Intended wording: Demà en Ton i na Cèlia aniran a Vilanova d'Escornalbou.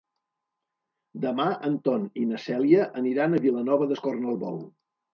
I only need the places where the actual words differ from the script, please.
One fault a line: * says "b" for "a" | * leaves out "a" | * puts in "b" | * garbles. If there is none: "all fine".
all fine